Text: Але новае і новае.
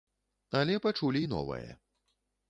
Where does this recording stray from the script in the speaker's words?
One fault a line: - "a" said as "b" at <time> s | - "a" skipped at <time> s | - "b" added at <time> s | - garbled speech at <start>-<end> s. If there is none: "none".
- "новае" said as "пачулі" at 0.8 s